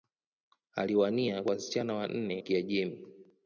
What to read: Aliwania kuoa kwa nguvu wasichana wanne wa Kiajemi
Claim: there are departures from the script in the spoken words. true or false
true